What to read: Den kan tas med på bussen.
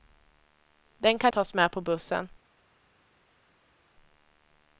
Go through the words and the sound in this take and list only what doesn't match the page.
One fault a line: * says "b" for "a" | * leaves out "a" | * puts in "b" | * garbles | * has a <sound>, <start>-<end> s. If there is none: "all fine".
all fine